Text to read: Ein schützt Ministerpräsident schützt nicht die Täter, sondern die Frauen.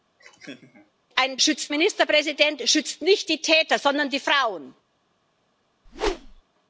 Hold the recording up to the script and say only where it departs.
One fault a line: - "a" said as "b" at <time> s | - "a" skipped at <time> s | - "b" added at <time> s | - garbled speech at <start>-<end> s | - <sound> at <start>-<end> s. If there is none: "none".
- laugh at 0.2-0.9 s
- whoosh at 5.9-6.4 s